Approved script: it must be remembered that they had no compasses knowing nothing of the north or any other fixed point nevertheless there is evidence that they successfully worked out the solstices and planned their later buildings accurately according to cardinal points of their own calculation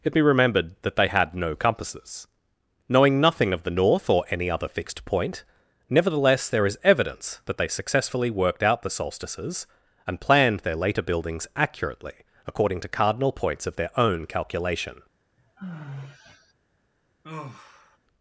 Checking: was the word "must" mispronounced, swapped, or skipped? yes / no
yes